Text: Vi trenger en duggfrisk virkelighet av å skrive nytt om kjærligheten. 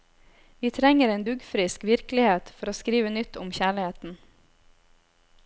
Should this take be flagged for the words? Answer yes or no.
yes